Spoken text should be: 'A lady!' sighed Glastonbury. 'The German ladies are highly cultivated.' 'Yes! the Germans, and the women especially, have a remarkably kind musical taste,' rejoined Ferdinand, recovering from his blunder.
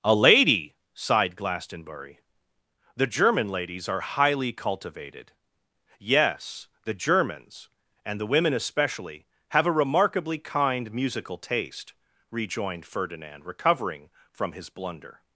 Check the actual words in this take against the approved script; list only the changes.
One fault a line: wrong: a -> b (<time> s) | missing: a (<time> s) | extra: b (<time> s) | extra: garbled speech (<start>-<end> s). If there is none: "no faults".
no faults